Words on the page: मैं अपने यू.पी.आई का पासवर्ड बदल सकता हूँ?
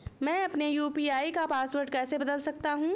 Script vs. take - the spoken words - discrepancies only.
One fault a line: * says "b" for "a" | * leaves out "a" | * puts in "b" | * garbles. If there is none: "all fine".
* puts in "कैसे"